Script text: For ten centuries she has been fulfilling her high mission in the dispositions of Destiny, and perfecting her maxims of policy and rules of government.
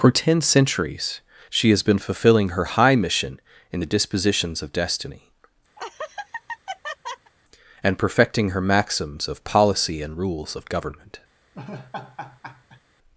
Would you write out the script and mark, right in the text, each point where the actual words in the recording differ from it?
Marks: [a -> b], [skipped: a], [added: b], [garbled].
For ten centuries she has been fulfilling her high mission in the dispositions of Destiny, and perfecting her maxims of policy and rules of government.